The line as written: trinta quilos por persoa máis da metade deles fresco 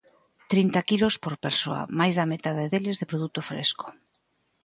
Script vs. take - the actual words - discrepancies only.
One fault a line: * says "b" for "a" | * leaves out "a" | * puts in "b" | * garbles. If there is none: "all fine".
* puts in "de produto"